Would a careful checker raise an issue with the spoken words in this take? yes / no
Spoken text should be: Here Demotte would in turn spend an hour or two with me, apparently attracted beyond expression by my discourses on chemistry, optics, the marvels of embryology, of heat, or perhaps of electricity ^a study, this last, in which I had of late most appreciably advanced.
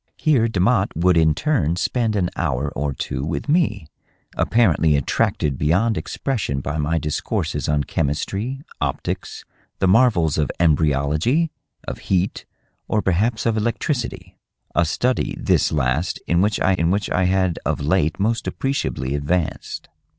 yes